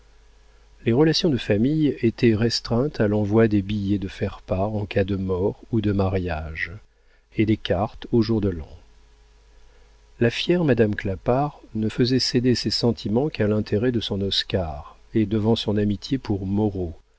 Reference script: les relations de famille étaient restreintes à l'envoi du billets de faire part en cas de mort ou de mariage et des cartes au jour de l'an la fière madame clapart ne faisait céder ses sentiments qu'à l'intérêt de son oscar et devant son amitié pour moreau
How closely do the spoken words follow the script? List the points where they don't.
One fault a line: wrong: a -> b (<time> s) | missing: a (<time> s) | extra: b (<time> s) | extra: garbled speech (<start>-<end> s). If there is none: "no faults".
wrong: du -> des (3.5 s)